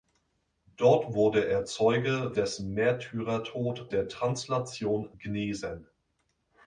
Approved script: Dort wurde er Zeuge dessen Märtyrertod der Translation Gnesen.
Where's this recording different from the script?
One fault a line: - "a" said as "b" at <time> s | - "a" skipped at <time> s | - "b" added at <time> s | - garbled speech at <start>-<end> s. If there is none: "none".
none